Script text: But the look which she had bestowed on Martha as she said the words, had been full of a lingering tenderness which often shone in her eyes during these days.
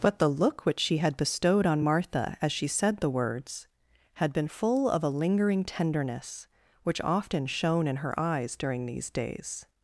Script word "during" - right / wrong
right